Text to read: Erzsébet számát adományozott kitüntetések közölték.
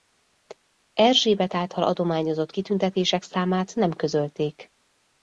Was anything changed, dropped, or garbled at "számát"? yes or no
yes